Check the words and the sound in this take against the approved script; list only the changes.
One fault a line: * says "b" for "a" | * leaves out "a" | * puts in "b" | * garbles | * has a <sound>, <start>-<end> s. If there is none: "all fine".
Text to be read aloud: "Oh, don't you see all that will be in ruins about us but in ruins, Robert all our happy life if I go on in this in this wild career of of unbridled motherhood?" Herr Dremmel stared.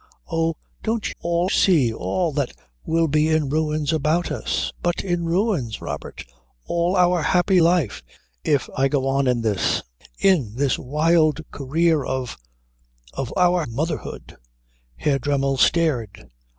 * says "all" for "you"
* says "our" for "unbridled"